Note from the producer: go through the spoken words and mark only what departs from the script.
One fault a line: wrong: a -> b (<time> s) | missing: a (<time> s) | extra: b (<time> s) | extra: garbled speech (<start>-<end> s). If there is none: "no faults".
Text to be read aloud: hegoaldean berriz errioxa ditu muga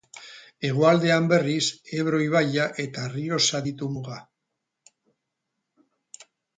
extra: ebro ibaia eta (2.0 s)